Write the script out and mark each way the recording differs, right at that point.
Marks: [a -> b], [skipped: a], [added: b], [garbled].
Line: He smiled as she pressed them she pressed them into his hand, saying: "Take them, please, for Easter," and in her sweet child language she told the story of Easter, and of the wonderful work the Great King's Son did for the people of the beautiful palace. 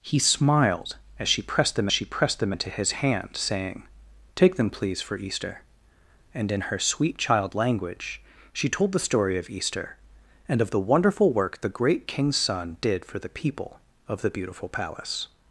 He smiled as she pressed them she pressed them into his hand, saying: "Take them, please, for Easter," and in her sweet child language she told the story of Easter, and of the wonderful work the Great King's Son did for the people of the beautiful palace.